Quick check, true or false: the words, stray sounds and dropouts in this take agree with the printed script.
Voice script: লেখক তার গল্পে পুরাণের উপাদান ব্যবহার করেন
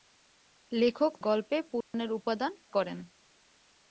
false